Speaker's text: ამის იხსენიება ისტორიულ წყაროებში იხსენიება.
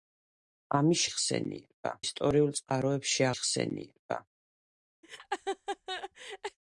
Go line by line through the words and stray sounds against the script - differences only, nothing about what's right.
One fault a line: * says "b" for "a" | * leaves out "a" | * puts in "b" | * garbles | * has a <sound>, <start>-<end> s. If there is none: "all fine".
* has a laugh, 5.0-6.6 s